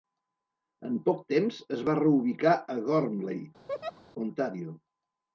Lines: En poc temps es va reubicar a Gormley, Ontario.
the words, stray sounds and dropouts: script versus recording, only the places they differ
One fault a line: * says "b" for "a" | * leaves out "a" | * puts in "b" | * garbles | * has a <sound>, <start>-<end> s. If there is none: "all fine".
* has a laugh, 3.7-4.0 s